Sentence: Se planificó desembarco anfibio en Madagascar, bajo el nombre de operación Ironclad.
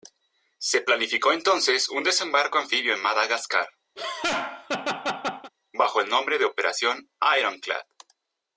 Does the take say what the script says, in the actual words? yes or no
no